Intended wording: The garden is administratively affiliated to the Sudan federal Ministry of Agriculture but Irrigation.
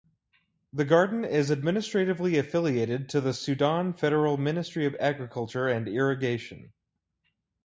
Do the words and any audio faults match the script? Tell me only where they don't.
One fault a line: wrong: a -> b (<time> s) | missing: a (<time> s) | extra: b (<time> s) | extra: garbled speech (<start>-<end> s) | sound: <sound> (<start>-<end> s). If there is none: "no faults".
wrong: but -> and (5.7 s)